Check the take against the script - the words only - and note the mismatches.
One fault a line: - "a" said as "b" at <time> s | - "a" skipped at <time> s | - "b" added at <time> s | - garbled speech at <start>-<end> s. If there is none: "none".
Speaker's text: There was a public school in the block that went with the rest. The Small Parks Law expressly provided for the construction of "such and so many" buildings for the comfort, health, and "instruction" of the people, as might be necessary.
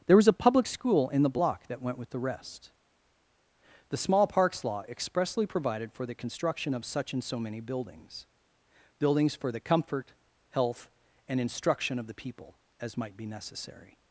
- "buildings" added at 9.0 s